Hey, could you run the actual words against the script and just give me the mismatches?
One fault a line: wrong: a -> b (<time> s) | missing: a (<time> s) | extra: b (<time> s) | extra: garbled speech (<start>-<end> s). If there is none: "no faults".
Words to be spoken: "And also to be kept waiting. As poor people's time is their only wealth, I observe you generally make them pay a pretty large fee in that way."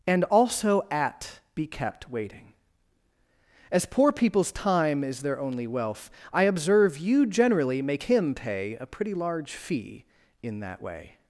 wrong: to -> at (0.9 s)
wrong: them -> him (8.0 s)